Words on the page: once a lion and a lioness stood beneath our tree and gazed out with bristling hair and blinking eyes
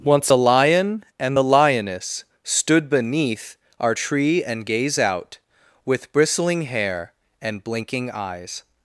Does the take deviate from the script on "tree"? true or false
false